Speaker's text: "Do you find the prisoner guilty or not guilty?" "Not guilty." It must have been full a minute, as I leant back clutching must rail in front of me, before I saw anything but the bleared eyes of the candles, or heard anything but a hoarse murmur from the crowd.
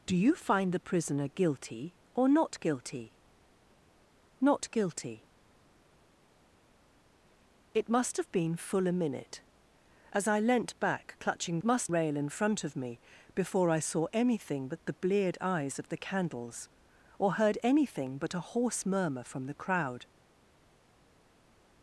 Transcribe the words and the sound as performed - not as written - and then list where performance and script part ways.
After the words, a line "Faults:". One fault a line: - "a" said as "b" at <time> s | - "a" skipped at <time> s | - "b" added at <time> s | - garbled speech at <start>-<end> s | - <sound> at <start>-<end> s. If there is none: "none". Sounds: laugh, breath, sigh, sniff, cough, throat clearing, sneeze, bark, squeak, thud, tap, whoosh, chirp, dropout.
"Do you find the prisoner guilty or not guilty?" "Not guilty." It must have been full a minute, as I leant back clutching must rail in front of me, before I saw anything but the bleared eyes of the candles, or heard anything but a hoarse murmur from the crowd.
Faults:
none